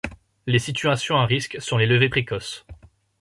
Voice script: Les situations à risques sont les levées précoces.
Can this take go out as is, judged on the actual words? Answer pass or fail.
pass